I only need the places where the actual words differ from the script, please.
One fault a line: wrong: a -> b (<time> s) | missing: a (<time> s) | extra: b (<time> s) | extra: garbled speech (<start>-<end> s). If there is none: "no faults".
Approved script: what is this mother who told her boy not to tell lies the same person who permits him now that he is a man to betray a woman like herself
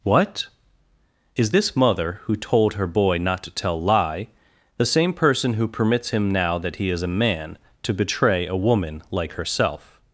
wrong: lies -> lie (3.8 s)